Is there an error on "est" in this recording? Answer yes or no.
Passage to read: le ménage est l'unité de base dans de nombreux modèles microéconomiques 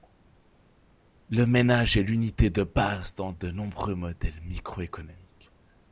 no